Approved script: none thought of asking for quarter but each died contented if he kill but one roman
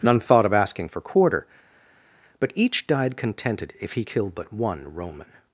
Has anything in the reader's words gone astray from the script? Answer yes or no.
no